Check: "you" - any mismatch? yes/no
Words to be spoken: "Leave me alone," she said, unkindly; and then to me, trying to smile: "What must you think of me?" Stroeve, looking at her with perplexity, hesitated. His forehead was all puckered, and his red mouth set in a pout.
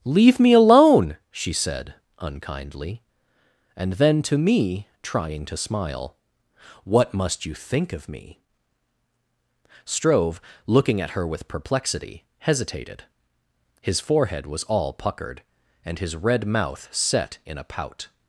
no